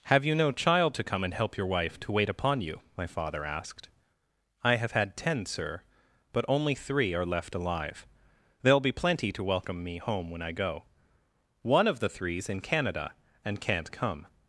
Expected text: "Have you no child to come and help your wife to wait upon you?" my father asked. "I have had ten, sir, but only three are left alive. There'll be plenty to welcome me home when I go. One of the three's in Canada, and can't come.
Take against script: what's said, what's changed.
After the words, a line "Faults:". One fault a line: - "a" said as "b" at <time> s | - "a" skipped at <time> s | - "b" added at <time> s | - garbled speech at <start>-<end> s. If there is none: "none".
"Have you no child to come and help your wife to wait upon you?" my father asked. "I have had ten, sir, but only three are left alive. There'll be plenty to welcome me home when I go. One of the three's in Canada, and can't come.
Faults:
none